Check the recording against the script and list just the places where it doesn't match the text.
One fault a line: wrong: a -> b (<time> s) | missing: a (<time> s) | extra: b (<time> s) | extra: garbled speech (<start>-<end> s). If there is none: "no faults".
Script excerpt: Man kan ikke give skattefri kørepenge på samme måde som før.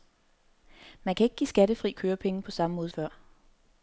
missing: som (2.9 s)